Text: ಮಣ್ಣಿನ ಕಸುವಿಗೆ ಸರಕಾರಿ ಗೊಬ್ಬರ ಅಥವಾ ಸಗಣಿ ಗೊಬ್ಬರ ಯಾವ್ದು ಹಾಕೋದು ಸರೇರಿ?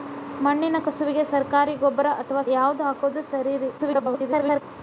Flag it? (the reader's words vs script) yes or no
yes